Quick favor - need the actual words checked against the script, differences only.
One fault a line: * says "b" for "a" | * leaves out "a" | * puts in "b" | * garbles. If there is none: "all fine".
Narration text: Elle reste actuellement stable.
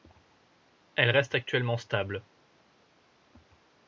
all fine